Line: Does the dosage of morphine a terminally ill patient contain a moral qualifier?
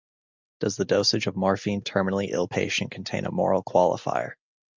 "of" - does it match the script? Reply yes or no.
yes